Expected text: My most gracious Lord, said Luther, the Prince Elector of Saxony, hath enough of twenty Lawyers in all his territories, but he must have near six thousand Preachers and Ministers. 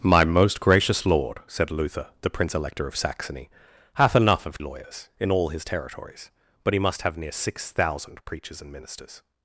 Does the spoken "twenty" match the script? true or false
false